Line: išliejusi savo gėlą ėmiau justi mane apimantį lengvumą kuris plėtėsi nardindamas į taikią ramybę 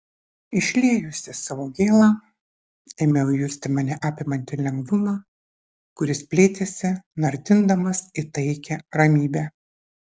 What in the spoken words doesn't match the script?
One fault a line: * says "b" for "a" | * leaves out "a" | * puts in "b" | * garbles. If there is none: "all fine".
all fine